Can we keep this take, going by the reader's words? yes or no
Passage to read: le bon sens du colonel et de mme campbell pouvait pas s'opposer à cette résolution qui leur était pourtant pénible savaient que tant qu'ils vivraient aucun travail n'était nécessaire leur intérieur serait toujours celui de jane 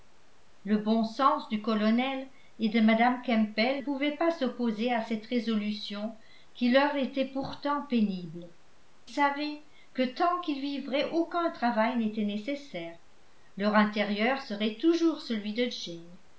yes